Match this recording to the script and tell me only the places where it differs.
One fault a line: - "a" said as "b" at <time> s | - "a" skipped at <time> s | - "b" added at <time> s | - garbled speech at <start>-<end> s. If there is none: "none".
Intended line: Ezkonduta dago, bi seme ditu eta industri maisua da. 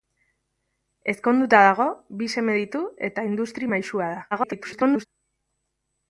- garbled speech at 4.3-5.1 s